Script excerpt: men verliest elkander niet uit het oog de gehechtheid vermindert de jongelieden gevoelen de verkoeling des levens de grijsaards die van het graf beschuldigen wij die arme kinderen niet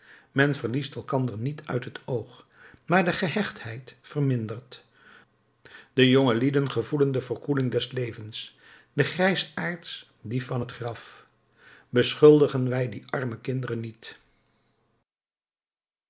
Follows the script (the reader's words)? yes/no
no